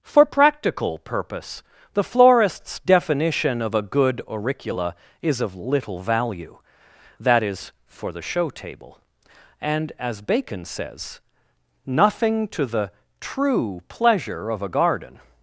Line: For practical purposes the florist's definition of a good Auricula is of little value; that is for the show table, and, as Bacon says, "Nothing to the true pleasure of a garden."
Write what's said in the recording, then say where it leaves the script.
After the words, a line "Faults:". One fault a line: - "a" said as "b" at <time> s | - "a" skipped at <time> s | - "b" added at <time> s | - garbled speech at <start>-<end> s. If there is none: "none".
For practical purpose the florist's definition of a good Auricula is of little value; that is for the show table, and, as Bacon says, "Nothing to the true pleasure of a garden."
Faults:
- "purposes" said as "purpose" at 1.0 s